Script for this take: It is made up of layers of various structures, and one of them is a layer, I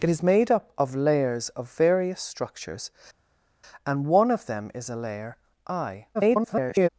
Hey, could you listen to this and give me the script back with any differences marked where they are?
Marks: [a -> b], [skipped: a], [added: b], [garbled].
It is made up of layers of various structures, and one of them is a layer, I [garbled]